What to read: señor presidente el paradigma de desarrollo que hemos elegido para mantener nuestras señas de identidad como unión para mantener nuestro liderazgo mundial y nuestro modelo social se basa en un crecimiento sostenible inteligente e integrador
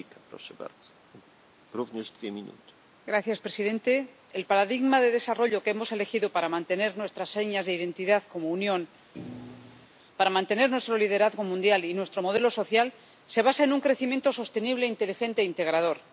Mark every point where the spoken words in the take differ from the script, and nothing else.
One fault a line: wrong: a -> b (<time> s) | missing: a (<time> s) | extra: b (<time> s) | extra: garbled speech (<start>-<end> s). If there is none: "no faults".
no faults